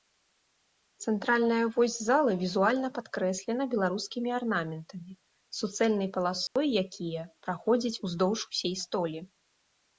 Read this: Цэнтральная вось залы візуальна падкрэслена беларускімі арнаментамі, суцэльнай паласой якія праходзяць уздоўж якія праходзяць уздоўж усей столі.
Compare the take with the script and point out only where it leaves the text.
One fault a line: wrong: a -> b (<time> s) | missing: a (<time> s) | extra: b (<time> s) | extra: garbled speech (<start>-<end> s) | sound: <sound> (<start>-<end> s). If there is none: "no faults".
sound: dropout (6.5-6.6 s)
missing: якія праходзяць уздоўж (8.4 s)